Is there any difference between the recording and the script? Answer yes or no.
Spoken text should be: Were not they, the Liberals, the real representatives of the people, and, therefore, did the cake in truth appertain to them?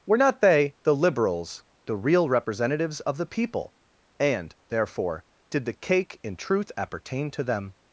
no